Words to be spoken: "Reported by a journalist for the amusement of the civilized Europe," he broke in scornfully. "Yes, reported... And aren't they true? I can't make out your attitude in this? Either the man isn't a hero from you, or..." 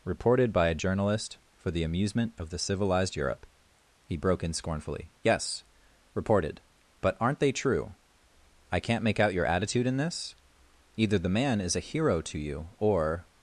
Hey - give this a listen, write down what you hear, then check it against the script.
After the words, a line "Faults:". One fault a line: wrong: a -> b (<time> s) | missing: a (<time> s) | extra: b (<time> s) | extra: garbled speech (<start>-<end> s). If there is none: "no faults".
"Reported by a journalist for the amusement of the civilized Europe," he broke in scornfully. "Yes, reported... But aren't they true? I can't make out your attitude in this? Either the man is a hero to you, or..."
Faults:
wrong: And -> But (7.0 s)
wrong: isn't -> is (11.6 s)
wrong: from -> to (12.2 s)